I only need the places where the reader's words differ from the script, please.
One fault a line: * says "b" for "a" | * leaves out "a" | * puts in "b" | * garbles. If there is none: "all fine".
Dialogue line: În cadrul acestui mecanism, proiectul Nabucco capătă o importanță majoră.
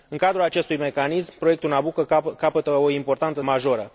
all fine